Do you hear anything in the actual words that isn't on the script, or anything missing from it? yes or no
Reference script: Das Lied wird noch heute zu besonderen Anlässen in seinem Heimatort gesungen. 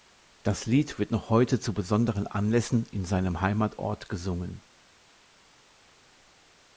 no